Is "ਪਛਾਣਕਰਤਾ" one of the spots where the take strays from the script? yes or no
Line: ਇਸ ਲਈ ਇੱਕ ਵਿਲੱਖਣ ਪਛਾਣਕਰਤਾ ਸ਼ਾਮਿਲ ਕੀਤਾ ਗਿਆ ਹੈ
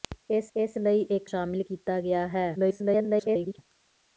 yes